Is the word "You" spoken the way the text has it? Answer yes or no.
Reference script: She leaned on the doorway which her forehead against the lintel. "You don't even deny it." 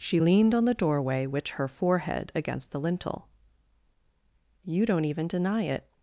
yes